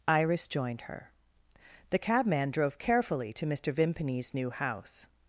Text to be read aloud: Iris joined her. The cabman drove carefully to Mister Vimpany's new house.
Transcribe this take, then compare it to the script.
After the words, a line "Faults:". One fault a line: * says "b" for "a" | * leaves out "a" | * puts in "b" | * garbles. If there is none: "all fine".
Iris joined her. The cabman drove carefully to Mister Vimpany's new house.
Faults:
all fine